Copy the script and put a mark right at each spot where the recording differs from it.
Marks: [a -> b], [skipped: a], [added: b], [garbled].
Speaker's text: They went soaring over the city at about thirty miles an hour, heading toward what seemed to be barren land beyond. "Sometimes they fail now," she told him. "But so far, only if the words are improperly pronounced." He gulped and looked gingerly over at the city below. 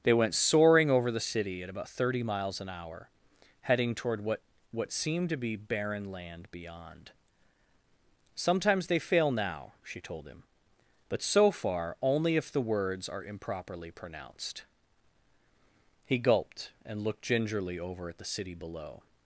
They went soaring over the city at about thirty miles an hour, heading toward what [added: what] seemed to be barren land beyond. "Sometimes they fail now," she told him. "But so far, only if the words are improperly pronounced." He gulped and looked gingerly over at the city below.